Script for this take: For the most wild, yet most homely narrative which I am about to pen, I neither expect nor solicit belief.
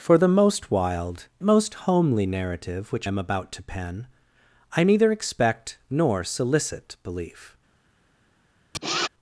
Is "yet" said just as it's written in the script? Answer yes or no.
no